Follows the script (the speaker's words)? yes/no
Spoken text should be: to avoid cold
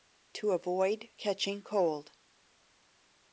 no